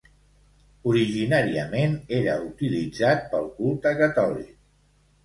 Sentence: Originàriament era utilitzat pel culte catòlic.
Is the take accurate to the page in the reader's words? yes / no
yes